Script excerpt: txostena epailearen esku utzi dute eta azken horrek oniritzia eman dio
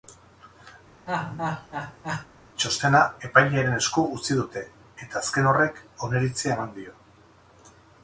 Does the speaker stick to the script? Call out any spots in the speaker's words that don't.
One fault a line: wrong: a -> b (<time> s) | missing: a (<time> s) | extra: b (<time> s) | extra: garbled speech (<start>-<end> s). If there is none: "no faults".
no faults